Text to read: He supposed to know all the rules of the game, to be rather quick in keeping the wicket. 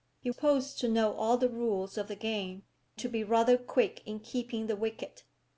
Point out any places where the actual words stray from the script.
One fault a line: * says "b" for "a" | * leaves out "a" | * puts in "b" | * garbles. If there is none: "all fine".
all fine